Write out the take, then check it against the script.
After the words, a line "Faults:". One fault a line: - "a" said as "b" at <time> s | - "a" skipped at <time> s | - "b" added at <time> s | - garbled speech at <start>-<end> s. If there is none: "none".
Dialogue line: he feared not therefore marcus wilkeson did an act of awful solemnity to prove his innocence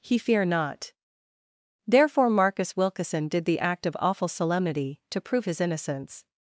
he fear not therefore marcus wilkeson did the act of awful solemnity to prove his innocence
Faults:
- "feared" said as "fear" at 0.2 s
- "an" said as "the" at 3.5 s